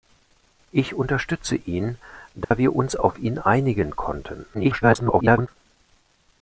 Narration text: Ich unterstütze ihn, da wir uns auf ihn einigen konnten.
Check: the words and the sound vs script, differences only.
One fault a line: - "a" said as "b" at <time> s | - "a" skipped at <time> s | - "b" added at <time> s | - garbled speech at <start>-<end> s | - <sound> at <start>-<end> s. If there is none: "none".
- dropout at 2.4-2.5 s
- garbled speech at 4.5-5.5 s